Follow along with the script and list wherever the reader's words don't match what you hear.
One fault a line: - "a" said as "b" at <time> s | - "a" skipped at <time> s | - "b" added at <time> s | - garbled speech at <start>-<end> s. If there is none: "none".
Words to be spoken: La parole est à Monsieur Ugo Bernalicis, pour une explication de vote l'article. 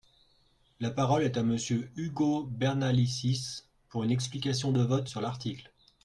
- "sur" added at 5.1 s